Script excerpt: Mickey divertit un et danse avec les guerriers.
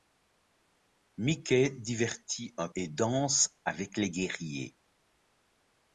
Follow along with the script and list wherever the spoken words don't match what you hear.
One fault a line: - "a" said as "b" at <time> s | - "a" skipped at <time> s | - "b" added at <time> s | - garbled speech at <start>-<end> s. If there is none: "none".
none